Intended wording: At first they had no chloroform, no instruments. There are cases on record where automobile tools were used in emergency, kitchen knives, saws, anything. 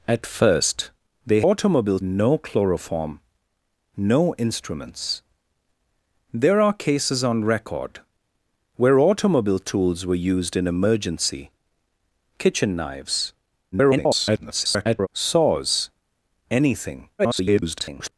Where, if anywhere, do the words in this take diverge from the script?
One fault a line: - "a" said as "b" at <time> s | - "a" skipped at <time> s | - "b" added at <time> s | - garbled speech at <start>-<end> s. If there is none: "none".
- "had" said as "automobile" at 1.4 s
- garbled speech at 13.7-15.1 s
- garbled speech at 17.2-18.1 s